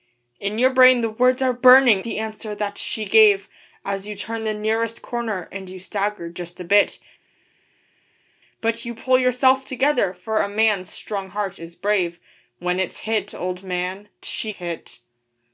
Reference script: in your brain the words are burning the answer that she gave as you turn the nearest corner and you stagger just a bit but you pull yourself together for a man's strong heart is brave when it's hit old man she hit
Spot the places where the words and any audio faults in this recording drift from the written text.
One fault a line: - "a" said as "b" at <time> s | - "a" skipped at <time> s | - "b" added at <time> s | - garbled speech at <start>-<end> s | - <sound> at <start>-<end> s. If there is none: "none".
none